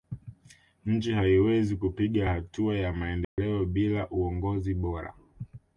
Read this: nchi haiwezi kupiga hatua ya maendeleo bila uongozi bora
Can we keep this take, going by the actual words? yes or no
yes